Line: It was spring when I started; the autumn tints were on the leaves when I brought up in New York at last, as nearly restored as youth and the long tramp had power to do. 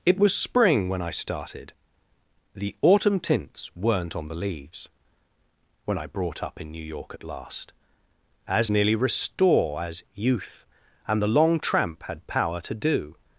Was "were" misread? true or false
true